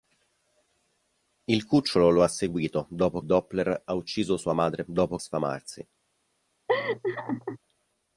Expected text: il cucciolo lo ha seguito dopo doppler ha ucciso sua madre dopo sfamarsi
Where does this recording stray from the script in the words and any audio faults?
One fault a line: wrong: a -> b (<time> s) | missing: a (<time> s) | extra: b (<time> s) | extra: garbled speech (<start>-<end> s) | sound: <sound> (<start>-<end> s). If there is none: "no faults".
sound: laugh (6.7-7.6 s)